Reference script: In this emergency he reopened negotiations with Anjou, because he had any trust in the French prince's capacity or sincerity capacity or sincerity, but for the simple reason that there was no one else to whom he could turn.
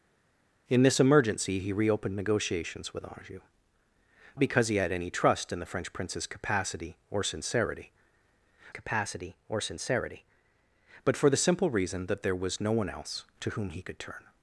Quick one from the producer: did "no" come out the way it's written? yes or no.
yes